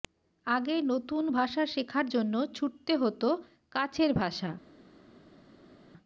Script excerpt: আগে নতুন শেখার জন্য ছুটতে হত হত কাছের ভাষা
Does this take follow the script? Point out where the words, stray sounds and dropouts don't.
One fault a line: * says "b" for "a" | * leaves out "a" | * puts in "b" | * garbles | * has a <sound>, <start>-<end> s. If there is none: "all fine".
* puts in "ভাষা"
* leaves out "হত"